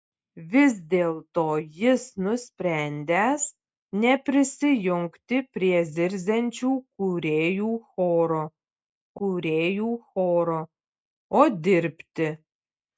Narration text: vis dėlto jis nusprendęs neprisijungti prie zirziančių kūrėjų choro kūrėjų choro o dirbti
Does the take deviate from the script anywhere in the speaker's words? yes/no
no